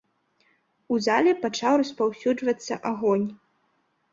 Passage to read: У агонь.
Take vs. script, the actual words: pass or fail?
fail